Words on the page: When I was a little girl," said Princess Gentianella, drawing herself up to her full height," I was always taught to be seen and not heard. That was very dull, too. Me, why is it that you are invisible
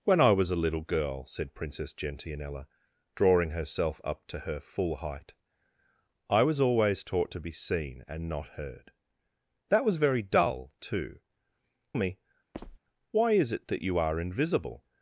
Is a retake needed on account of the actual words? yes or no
no